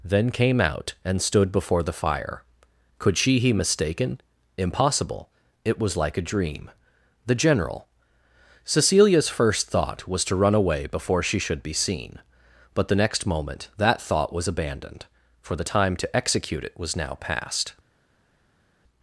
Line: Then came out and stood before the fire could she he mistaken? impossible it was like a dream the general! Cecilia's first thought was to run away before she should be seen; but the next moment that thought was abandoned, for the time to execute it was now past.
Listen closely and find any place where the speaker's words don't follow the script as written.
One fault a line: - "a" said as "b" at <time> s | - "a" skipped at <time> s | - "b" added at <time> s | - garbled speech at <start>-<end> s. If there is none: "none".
none